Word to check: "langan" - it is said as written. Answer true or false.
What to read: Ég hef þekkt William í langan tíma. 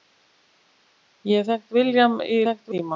false